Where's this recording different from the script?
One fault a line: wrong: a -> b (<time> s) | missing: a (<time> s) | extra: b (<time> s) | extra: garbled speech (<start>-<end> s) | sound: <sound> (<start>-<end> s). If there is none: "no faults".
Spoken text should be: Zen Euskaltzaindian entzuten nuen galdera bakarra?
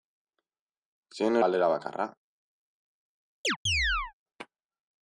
missing: Euskaltzaindian entzuten nuen (1.4 s)
sound: chirp (3.4-4.1 s)